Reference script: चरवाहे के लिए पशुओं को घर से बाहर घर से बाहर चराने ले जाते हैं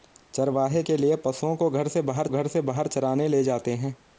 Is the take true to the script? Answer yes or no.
yes